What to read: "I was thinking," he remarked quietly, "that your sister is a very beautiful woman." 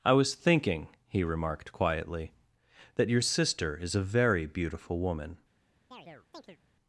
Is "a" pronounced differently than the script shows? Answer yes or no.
no